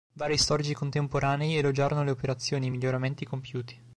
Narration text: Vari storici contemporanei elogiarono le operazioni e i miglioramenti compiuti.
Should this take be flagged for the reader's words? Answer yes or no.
no